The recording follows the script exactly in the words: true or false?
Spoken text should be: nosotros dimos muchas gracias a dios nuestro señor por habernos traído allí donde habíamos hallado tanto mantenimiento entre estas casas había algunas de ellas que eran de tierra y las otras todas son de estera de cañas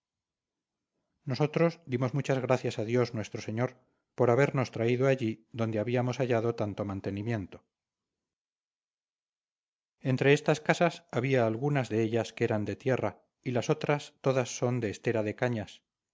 true